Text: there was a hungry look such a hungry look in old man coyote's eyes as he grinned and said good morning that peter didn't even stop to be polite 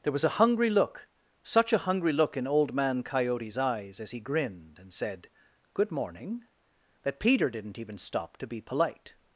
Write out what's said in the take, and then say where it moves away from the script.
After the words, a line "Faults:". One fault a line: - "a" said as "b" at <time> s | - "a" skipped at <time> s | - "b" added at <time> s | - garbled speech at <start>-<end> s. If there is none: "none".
there was a hungry look such a hungry look in old man coyote's eyes as he grinned and said good morning that peter didn't even stop to be polite
Faults:
none